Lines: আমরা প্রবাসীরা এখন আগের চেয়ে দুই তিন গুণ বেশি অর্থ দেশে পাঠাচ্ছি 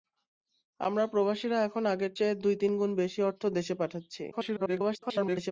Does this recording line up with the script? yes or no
no